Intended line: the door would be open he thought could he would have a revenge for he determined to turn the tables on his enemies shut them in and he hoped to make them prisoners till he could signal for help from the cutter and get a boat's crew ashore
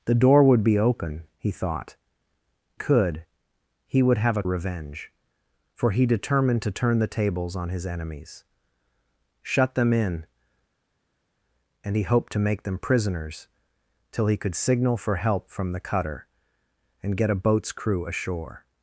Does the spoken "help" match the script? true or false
true